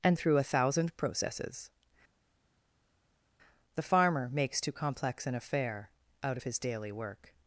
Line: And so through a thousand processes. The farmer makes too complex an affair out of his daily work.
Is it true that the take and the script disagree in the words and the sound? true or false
true